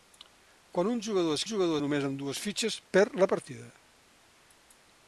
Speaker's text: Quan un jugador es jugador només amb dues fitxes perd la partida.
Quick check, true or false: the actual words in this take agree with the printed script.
true